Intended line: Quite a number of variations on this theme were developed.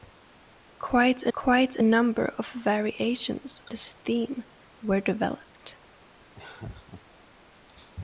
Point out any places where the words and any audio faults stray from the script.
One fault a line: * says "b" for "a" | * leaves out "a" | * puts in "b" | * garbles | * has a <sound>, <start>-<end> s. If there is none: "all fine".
* puts in "quite a"
* leaves out "on"
* has a laugh, 6.3-7.0 s